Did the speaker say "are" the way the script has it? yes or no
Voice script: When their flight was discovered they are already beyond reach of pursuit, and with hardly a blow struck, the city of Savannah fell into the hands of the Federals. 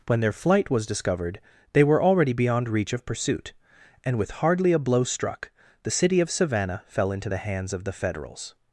no